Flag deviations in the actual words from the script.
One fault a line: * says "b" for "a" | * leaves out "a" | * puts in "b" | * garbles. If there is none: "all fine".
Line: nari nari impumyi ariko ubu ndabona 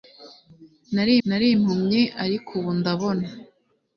all fine